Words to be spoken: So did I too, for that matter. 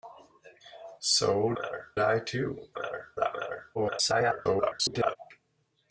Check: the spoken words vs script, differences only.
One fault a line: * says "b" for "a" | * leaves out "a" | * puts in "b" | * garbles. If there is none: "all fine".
* says "matter" for "did"
* says "matter" for "for"
* garbles